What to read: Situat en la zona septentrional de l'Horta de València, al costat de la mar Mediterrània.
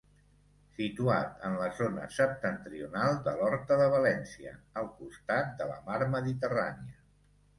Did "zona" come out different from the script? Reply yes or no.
no